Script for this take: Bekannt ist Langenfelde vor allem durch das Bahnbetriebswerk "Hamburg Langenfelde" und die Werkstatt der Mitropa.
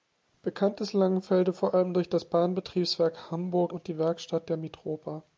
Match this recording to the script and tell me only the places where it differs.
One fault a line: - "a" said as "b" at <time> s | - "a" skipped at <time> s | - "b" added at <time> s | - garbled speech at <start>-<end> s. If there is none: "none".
- "Langenfelde" skipped at 3.7 s